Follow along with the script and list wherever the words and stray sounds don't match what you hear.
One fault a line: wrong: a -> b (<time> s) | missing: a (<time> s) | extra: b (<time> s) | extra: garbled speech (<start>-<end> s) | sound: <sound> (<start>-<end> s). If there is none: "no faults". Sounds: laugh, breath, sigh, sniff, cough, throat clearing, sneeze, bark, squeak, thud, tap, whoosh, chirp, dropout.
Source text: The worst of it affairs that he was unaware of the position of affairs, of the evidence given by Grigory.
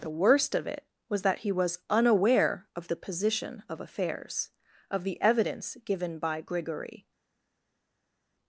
wrong: affairs -> was (1.1 s)